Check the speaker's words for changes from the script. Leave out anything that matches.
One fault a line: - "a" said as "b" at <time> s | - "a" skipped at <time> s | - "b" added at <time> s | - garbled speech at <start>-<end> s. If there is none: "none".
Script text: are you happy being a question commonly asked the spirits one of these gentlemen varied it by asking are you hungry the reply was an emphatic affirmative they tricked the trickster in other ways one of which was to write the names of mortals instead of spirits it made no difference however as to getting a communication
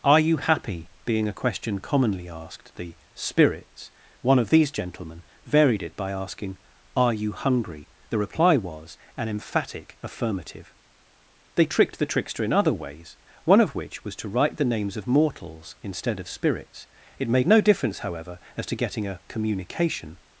none